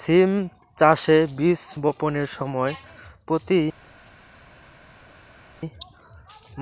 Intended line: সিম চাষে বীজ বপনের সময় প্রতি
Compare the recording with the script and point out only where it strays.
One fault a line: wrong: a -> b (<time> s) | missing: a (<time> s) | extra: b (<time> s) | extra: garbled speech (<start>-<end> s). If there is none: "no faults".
no faults